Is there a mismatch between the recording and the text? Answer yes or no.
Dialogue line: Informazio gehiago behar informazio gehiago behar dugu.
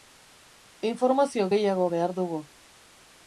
yes